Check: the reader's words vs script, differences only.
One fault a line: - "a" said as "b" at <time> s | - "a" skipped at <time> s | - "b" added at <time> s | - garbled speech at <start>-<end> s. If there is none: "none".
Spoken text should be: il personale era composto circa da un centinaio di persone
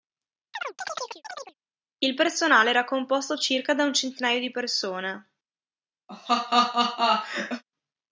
none